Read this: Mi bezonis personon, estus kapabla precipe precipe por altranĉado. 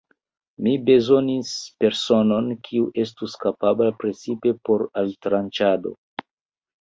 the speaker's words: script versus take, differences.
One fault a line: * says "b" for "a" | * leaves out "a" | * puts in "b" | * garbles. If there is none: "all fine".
* puts in "kiu"
* leaves out "precipe"